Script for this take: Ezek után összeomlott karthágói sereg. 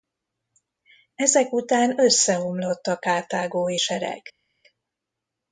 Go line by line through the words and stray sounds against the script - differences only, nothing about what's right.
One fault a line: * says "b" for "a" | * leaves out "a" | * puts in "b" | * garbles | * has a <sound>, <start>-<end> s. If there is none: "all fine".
* puts in "a"